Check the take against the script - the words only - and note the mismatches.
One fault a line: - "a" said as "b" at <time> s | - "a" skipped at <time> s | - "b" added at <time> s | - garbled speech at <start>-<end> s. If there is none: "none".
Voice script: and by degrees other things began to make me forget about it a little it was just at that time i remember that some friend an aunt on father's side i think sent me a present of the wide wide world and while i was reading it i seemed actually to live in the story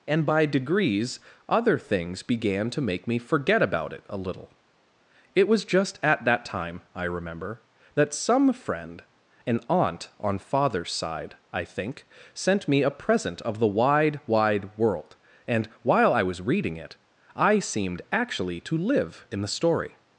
none